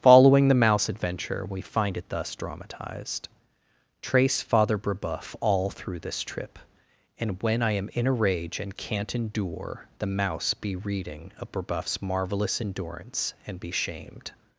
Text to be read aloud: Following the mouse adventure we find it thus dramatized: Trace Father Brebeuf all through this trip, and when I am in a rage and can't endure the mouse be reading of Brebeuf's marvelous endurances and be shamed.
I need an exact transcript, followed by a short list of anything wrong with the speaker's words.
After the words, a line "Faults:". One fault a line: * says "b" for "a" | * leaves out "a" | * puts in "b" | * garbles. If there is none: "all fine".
Following the mouse adventure we find it thus dramatized: Trace Father Brebeuf all through this trip, and when I am in a rage and can't endure the mouse be reading of Brebeuf's marvelous endurance and be shamed.
Faults:
* says "endurance" for "endurances"